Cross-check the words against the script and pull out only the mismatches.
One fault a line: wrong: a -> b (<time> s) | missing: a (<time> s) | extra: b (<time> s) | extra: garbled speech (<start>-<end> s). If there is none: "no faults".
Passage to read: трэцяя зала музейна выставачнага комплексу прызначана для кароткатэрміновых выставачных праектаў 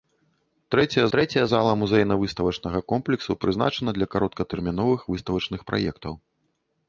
extra: трэцяя (1.2 s)